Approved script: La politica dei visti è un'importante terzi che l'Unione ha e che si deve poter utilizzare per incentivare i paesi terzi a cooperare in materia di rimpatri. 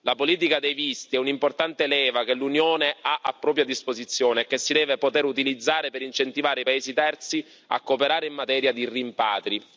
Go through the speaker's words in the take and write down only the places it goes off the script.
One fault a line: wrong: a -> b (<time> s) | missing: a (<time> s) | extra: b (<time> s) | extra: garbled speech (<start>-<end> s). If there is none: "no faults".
wrong: terzi -> leva (1.9 s)
extra: a propria disposizione (3.2 s)